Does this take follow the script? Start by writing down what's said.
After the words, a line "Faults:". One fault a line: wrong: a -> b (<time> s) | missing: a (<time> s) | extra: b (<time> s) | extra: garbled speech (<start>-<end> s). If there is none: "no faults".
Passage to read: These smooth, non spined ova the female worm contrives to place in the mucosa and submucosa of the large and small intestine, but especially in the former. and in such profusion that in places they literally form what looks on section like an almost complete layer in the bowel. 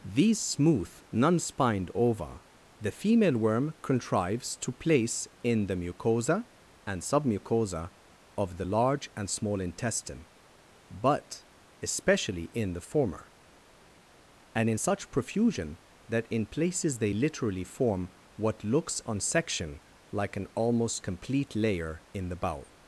These smooth, non spined ova the female worm contrives to place in the mucosa and submucosa of the large and small intestine, but especially in the former. and in such profusion that in places they literally form what looks on section like an almost complete layer in the bowel.
Faults:
no faults